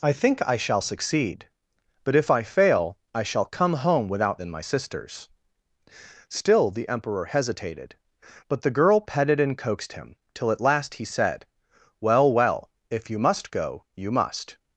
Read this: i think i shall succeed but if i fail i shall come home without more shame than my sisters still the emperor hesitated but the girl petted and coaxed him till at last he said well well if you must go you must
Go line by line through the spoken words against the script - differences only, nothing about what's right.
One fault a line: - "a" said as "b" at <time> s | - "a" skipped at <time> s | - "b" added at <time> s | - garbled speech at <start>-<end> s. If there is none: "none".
- "more shame" skipped at 4.4 s